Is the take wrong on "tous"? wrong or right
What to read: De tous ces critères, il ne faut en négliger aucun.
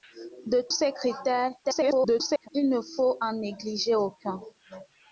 wrong